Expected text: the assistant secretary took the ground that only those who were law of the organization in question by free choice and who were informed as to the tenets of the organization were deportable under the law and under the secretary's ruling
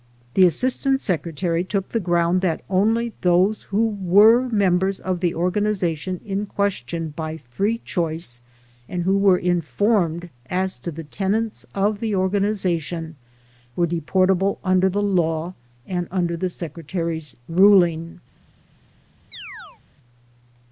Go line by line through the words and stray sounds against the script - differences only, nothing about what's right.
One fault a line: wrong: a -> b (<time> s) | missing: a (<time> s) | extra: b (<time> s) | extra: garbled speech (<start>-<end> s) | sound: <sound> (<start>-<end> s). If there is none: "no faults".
wrong: law -> members (4.5 s)
sound: chirp (19.3-19.8 s)